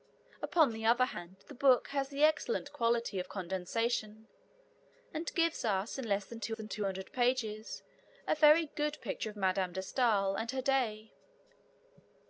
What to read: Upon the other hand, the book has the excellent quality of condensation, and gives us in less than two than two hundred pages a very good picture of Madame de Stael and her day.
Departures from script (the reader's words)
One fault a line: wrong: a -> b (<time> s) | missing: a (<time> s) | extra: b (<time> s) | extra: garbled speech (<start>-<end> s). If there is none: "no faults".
no faults